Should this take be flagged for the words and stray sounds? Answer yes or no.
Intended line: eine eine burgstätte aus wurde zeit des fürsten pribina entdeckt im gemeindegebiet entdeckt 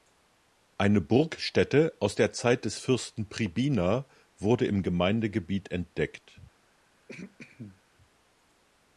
yes